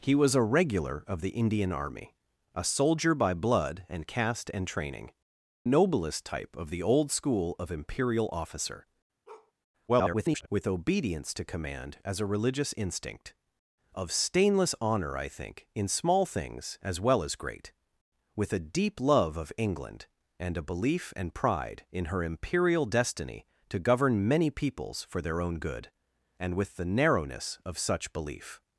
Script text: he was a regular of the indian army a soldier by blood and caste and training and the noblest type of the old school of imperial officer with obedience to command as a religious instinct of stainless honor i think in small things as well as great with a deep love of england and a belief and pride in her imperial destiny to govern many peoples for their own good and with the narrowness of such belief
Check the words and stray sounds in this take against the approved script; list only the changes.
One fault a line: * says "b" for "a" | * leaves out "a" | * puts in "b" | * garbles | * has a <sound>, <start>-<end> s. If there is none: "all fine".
* leaves out "and the"
* has a bark, 9.3-9.5 s
* garbles